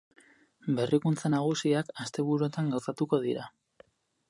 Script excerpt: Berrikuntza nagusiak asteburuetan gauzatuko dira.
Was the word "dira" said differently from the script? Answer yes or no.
no